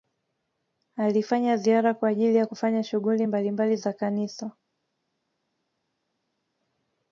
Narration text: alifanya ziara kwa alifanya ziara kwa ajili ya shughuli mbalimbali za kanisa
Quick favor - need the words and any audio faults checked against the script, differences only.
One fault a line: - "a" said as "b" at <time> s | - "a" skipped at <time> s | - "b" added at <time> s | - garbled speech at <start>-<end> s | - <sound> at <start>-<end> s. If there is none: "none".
- "alifanya ziara kwa" skipped at 2.1 s
- "kufanya" added at 2.4 s